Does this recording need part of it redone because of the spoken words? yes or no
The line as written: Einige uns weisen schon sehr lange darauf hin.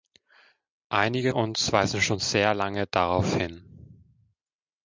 no